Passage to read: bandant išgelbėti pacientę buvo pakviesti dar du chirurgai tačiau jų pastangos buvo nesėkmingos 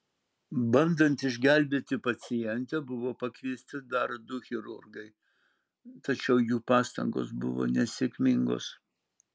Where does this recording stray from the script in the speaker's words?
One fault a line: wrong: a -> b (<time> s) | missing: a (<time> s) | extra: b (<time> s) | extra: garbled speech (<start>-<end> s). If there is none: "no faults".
no faults